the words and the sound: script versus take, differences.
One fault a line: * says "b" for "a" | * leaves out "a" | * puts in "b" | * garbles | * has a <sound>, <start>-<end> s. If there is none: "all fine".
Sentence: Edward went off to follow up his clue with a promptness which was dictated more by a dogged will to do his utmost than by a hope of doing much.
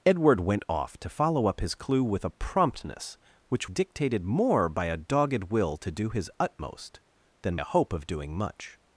* leaves out "was"
* leaves out "by"